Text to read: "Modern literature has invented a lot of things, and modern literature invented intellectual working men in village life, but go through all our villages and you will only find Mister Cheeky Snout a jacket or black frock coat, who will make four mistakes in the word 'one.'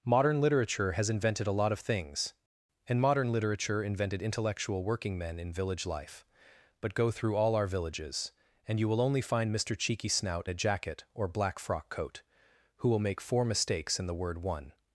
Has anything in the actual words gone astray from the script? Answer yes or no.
no